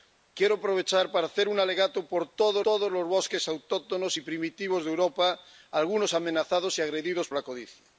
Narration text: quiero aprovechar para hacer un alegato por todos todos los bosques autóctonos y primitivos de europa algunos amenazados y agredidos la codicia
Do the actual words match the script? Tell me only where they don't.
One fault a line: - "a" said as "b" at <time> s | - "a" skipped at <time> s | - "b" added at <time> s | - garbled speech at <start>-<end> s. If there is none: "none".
none